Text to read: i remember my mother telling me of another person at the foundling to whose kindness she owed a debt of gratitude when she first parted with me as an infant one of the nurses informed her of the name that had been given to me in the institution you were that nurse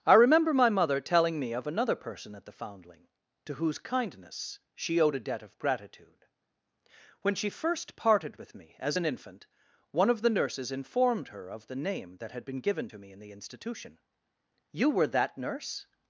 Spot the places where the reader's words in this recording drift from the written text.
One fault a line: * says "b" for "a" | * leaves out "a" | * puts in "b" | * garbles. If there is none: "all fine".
all fine